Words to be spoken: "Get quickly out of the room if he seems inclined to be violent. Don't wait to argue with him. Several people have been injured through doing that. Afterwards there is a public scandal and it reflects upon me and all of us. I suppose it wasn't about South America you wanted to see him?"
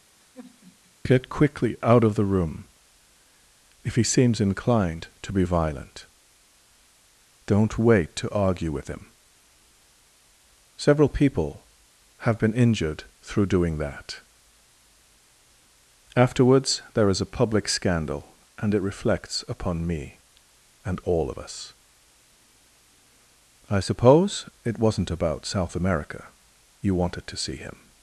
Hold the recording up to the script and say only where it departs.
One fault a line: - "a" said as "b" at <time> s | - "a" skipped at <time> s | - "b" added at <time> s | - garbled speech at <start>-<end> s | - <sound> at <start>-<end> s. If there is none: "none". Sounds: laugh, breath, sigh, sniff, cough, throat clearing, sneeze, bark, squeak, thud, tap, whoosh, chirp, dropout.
- sigh at 0.2-0.9 s